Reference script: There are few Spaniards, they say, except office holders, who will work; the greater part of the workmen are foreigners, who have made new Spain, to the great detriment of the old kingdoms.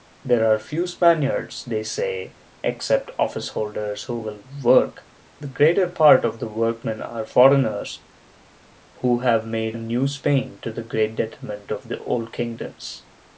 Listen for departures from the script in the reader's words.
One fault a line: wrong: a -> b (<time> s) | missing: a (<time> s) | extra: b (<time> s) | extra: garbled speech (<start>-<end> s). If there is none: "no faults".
no faults